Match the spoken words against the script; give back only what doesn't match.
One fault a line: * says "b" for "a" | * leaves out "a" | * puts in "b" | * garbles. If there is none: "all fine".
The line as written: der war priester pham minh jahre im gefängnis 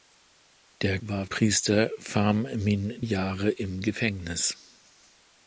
all fine